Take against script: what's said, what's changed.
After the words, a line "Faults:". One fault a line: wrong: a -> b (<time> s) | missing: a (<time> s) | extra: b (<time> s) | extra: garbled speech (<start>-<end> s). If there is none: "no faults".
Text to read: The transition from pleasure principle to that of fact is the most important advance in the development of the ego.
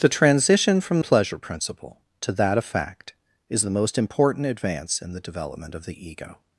The transition from pleasure principle to that of fact is the most important advance in the development of the ego.
Faults:
no faults